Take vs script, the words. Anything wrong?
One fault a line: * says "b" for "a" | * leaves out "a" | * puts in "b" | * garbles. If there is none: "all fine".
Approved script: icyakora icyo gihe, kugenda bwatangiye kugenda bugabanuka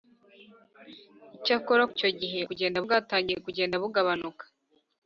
all fine